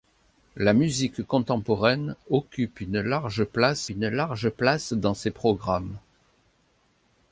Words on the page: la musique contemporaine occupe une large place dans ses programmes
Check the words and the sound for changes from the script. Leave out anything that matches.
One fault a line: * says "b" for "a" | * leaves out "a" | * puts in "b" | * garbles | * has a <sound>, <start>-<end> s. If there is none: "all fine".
* puts in "une large place"